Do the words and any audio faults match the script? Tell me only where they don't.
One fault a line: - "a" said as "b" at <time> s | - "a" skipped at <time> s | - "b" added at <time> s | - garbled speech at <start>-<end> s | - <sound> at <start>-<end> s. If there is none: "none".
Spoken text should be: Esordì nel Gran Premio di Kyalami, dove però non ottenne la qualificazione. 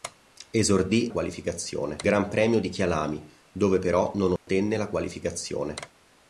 - "nel" said as "qualificazione" at 1.1 s
- dropout at 4.4-4.5 s